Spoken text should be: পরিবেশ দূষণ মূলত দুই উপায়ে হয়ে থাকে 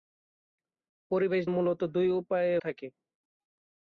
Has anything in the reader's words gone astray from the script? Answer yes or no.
yes